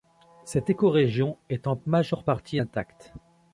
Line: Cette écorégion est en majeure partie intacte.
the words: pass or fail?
pass